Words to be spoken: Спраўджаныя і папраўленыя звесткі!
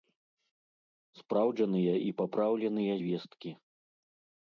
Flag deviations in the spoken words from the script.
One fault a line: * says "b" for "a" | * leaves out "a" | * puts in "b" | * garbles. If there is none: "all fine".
all fine